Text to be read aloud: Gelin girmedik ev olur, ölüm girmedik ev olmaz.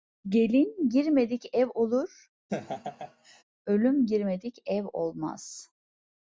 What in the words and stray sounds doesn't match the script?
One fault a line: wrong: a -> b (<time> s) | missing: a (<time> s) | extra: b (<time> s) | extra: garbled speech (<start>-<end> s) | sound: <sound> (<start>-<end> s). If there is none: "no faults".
sound: laugh (2.5-3.4 s)